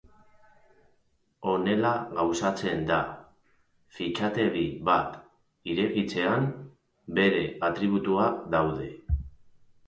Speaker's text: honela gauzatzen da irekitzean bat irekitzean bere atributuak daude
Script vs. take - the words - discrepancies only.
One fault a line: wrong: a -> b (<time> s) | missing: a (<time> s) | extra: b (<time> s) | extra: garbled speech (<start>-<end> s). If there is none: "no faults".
wrong: irekitzean -> fitxategi (4.0 s)